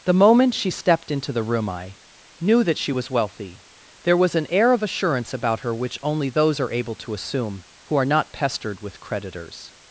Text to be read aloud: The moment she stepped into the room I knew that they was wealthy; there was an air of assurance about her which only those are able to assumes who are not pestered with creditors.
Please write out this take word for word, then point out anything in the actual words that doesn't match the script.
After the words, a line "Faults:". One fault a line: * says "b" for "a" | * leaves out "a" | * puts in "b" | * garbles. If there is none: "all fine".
The moment she stepped into the room I knew that she was wealthy; there was an air of assurance about her which only those are able to assume who are not pestered with creditors.
Faults:
* says "she" for "they"
* says "assume" for "assumes"